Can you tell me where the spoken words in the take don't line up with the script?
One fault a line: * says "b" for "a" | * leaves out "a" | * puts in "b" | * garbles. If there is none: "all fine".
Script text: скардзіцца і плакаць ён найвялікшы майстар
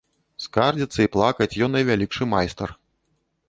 all fine